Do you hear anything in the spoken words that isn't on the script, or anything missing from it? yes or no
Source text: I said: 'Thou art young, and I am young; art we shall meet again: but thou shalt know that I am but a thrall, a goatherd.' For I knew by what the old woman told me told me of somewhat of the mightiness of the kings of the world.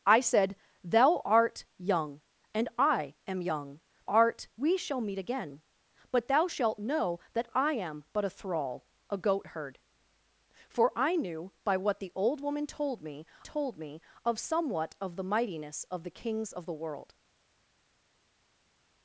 no